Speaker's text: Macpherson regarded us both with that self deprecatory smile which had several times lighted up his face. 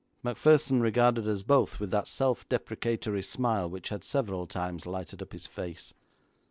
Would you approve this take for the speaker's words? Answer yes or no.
yes